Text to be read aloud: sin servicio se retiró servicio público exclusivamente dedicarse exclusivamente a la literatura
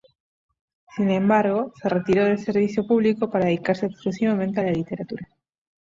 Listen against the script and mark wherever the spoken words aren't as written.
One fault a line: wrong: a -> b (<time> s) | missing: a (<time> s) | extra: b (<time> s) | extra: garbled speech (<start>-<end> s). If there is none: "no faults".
wrong: servicio -> embargo (1.1 s)
extra: del (2.2 s)
wrong: exclusivamente -> para (3.3 s)